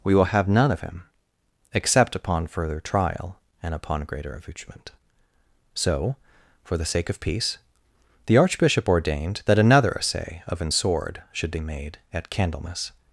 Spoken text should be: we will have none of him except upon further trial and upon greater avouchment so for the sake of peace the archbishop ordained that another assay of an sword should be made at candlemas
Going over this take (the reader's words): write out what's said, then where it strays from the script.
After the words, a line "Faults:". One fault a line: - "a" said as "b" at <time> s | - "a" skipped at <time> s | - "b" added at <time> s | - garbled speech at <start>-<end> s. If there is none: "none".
we will have none of him except upon further trial and upon greater avouchment so for the sake of peace the archbishop ordained that another assay of an sword should be made at candlemas
Faults:
none